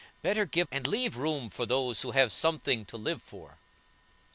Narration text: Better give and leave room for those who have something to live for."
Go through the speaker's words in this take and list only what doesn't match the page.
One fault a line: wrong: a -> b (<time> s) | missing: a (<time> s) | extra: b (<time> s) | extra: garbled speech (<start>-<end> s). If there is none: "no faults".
no faults